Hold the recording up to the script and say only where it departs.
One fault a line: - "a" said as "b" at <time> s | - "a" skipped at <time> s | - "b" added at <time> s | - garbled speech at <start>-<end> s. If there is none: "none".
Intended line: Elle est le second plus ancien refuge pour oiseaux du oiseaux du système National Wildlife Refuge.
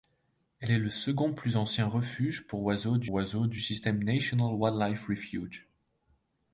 none